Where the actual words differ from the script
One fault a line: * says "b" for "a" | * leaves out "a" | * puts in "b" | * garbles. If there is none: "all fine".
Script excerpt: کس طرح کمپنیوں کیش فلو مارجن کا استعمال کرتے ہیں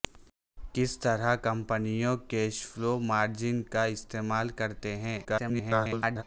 * garbles